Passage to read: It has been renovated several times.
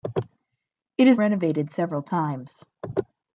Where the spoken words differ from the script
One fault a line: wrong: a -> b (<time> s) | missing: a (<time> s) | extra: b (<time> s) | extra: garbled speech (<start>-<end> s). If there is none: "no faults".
missing: been (1.2 s)